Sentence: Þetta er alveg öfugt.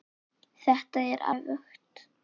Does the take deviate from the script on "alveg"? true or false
true